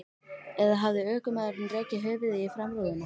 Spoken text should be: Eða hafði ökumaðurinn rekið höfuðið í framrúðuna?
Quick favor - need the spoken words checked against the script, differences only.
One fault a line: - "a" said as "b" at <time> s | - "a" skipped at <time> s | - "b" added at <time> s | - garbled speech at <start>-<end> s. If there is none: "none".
none